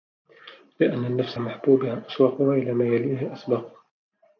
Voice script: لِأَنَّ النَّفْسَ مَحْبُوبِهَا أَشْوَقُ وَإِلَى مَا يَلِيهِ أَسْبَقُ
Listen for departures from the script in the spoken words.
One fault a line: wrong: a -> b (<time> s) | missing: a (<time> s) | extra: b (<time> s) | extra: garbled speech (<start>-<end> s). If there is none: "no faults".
no faults